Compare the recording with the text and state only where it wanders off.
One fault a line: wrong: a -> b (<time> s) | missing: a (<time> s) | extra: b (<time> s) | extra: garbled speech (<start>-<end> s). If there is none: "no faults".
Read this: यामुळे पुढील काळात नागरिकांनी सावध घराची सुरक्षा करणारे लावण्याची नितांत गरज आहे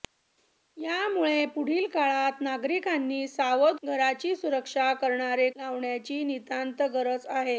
no faults